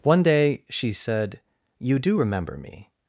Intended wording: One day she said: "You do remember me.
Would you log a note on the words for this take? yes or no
no